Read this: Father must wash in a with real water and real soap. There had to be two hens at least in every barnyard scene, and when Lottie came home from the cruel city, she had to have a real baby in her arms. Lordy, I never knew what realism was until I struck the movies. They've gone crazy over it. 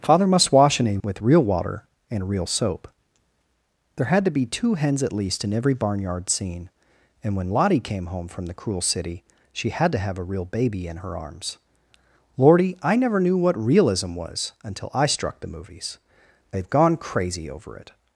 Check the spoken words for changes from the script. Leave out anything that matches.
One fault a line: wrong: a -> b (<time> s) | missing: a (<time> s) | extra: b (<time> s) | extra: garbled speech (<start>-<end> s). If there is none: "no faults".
no faults